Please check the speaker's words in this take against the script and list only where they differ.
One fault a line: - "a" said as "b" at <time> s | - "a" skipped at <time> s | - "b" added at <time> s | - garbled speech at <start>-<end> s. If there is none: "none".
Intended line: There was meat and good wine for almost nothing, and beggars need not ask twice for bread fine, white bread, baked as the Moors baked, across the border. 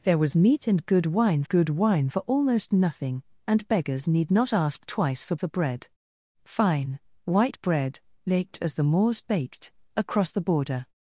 - "good wine" added at 1.5 s
- "for" added at 5.4 s